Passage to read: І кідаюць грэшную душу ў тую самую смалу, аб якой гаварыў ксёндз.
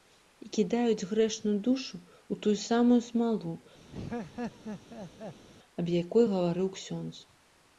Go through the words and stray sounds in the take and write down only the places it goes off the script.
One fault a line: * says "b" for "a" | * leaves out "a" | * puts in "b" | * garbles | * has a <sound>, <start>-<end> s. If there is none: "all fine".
* has a laugh, 3.9-5.5 s